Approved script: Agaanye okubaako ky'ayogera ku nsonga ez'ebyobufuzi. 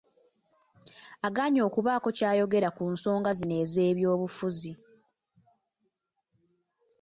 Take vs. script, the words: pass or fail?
fail